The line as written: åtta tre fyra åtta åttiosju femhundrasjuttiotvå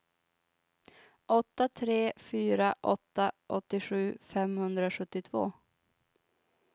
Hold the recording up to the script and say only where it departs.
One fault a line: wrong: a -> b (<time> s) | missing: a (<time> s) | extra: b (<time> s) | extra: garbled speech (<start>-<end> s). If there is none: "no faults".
no faults